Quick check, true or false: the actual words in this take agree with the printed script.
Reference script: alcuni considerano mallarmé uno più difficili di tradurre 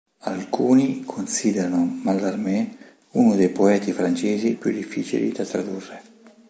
false